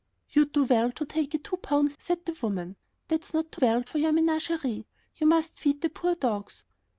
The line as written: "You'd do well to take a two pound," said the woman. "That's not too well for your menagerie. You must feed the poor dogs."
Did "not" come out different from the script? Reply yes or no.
no